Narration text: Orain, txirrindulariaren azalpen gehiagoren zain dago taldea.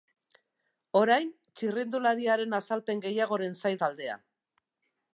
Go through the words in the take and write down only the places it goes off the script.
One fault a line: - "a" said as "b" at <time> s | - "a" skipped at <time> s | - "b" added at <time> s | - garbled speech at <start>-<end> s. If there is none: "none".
- "dago" skipped at 3.8 s